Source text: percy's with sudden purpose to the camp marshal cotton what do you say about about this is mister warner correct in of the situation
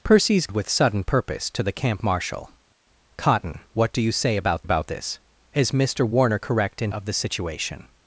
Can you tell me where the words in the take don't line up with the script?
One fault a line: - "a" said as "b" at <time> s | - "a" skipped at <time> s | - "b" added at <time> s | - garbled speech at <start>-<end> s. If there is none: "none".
none